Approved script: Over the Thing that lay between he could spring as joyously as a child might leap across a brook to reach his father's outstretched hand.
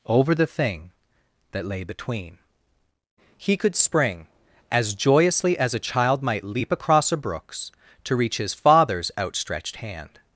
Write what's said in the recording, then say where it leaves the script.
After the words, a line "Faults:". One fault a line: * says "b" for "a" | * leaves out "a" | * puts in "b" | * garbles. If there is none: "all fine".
Over the Thing that lay between he could spring as joyously as a child might leap across a brooks to reach his father's outstretched hand.
Faults:
* says "brooks" for "brook"